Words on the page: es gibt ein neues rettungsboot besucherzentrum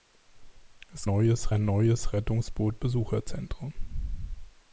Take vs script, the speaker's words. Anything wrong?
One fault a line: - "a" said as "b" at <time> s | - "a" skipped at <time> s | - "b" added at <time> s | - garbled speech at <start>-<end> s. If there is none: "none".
- "gibt" said as "neues" at 1.1 s